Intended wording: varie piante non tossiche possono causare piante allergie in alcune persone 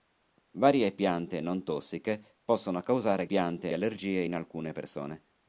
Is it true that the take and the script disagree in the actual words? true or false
false